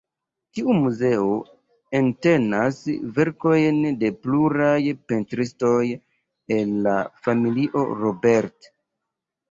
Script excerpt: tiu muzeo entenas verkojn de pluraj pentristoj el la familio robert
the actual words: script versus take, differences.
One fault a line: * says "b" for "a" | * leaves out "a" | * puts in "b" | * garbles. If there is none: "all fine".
all fine